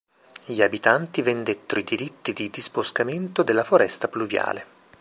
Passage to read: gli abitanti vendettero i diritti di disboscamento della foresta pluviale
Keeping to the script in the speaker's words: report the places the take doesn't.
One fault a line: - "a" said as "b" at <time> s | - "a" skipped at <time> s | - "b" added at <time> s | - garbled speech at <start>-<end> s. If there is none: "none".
none